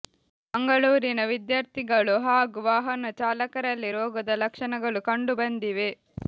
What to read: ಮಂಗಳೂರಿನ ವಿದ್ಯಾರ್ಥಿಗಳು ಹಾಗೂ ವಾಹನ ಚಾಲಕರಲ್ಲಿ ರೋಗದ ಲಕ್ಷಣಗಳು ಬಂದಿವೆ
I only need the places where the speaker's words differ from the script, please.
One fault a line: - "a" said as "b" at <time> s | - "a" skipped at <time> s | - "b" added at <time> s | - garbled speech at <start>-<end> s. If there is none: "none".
- "ಕಂಡು" added at 5.1 s